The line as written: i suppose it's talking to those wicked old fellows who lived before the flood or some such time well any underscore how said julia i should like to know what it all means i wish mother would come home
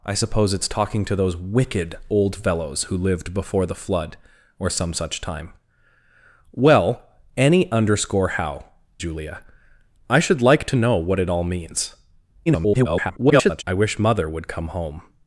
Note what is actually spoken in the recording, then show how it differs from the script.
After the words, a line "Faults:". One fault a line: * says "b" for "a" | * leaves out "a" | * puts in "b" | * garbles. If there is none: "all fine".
i suppose it's talking to those wicked old fellows who lived before the flood or some such time well any underscore how julia i should like to know what it all means [garbled] i wish mother would come home
Faults:
* leaves out "said"
* garbles